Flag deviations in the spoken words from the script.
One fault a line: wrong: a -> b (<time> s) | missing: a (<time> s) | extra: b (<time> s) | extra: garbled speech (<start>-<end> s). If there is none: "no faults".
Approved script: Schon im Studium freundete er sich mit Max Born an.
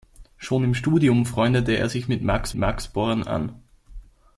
extra: Max (2.6 s)